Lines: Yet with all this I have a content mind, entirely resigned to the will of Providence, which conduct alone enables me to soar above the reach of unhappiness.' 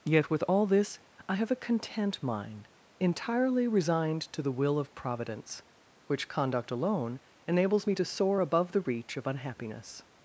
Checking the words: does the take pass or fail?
pass